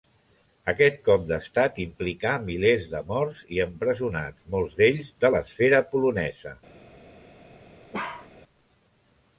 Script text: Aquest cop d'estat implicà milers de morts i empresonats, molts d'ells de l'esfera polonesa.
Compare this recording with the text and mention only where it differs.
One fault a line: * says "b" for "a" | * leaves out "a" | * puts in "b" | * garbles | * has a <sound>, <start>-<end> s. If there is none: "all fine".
* has a bark, 7.9-8.3 s